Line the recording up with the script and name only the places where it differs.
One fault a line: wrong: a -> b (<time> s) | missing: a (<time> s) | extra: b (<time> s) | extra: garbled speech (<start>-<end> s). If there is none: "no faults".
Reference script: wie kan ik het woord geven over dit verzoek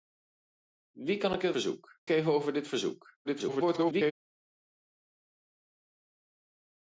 wrong: woord -> verzoek (1.5 s)
extra: garbled speech (3.2-4.1 s)